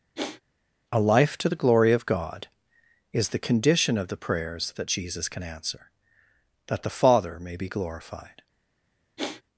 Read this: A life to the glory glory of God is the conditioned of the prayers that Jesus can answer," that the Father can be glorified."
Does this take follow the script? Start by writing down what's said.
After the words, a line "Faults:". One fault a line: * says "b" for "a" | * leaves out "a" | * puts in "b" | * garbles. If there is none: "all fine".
A life to the glory of God is the condition of the prayers that Jesus can answer," that the Father may be glorified."
Faults:
* leaves out "glory"
* says "condition" for "conditioned"
* says "may" for "can"